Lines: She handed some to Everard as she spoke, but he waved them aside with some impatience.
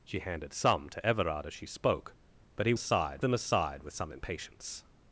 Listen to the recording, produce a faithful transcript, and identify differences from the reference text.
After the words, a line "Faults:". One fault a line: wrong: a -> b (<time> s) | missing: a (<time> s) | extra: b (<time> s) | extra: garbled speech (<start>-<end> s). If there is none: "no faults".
She handed some to Everard as she spoke, but he aside them aside with some impatience.
Faults:
wrong: waved -> aside (2.7 s)